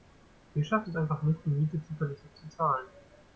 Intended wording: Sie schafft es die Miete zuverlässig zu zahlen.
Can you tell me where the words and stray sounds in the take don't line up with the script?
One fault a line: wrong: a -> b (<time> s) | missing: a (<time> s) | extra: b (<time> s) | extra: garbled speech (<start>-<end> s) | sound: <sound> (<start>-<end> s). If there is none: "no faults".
extra: einfach nicht (0.9 s)